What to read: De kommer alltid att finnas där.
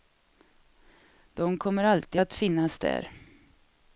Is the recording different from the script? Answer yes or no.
no